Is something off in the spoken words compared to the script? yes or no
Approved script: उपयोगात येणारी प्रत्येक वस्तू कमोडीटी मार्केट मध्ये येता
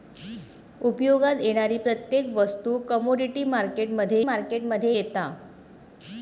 yes